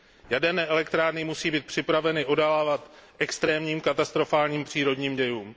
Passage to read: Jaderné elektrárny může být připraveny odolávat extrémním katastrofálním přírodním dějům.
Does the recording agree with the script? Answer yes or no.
no